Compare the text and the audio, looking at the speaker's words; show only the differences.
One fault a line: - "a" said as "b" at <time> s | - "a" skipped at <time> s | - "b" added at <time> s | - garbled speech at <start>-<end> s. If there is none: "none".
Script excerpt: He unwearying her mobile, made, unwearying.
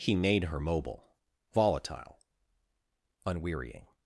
- "unwearying" said as "made" at 0.1 s
- "made" said as "volatile" at 1.5 s